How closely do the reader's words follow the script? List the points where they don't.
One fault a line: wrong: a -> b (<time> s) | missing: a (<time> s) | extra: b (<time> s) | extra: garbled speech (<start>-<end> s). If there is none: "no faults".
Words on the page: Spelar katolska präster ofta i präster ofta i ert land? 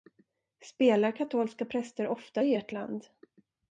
missing: präster ofta i (2.5 s)